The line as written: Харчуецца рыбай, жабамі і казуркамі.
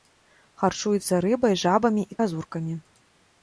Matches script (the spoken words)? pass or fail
pass